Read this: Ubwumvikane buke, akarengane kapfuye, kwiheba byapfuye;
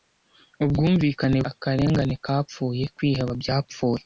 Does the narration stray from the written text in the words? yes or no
yes